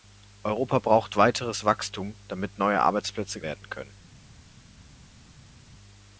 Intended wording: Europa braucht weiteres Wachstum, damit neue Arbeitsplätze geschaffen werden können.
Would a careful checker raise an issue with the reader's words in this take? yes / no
yes